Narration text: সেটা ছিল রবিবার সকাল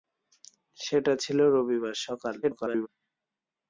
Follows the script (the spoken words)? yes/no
no